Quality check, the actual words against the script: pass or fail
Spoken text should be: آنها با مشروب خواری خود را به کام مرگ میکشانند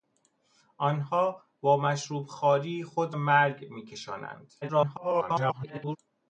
fail